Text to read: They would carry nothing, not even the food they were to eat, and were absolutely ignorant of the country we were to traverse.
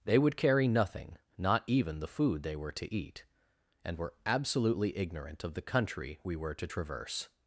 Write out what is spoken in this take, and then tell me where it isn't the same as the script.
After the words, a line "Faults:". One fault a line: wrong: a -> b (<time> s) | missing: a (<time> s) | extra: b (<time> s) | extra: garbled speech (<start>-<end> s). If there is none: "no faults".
They would carry nothing, not even the food they were to eat, and were absolutely ignorant of the country we were to traverse.
Faults:
no faults